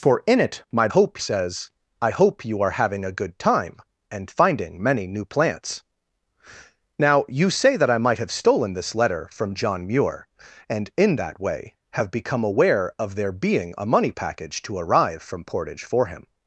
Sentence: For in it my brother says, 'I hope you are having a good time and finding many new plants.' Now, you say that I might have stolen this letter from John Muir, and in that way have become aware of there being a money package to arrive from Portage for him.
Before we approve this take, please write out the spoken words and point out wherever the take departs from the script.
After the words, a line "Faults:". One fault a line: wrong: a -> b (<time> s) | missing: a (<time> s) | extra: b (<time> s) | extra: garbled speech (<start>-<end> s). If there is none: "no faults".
For in it my hope says, 'I hope you are having a good time and finding many new plants.' Now, you say that I might have stolen this letter from John Muir, and in that way have become aware of there being a money package to arrive from Portage for him.
Faults:
wrong: brother -> hope (0.9 s)